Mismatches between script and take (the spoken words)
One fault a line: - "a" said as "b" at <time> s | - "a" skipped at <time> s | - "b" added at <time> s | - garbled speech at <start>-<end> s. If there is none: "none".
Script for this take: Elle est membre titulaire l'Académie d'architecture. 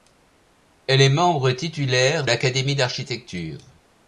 none